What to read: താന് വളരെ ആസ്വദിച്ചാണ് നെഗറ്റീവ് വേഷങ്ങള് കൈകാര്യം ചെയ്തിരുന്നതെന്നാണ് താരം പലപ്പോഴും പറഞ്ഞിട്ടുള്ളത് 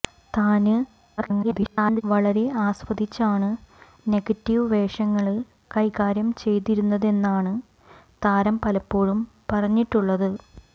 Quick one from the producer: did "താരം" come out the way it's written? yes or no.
yes